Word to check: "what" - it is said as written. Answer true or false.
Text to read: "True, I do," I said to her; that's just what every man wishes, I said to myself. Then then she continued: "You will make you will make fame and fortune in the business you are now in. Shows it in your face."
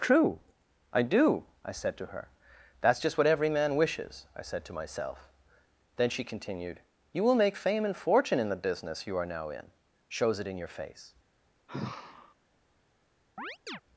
true